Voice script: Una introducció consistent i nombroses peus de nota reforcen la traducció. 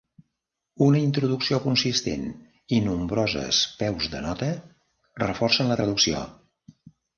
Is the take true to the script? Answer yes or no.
yes